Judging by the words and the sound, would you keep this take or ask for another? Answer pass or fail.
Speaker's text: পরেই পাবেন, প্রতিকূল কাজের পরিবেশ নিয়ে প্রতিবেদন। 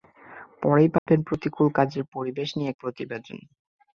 fail